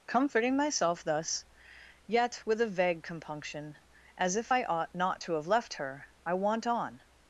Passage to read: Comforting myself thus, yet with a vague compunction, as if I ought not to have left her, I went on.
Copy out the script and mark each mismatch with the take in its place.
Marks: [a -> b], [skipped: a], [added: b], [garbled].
Comforting myself thus, yet with a vague compunction, as if I ought not to have left her, I [went -> want] on.